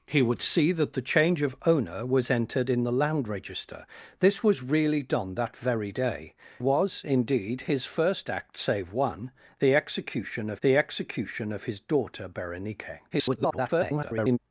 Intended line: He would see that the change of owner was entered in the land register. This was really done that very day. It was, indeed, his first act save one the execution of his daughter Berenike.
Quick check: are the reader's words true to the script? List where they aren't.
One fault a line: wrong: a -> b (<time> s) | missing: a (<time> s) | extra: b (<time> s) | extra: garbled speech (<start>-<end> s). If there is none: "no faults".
missing: It (6.3 s)
extra: the execution of (10.6 s)
extra: garbled speech (13.1-14.4 s)